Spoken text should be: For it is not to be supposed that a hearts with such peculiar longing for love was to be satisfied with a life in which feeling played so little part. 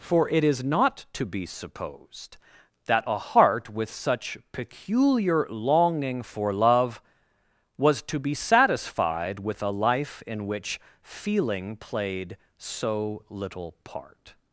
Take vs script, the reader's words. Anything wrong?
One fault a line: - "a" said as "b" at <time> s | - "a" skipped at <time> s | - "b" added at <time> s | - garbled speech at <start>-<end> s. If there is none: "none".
- "hearts" said as "heart" at 3.2 s